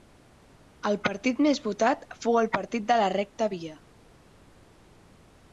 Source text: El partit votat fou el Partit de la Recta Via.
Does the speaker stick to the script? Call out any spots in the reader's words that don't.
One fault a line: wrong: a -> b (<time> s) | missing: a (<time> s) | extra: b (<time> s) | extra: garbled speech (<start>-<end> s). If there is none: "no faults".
extra: més (1.5 s)